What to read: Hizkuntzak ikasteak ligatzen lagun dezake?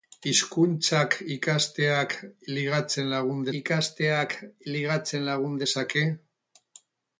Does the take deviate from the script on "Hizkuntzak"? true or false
false